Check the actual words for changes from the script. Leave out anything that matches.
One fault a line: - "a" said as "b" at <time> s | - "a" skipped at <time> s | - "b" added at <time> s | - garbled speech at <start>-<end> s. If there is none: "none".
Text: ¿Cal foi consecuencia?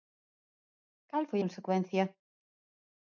none